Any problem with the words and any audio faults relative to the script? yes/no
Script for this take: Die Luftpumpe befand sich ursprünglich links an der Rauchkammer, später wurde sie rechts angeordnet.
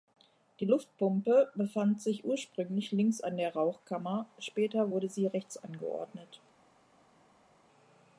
no